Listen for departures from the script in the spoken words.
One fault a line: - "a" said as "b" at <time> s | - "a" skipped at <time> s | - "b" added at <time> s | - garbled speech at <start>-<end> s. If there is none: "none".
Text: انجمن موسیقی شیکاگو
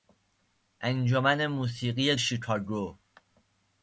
none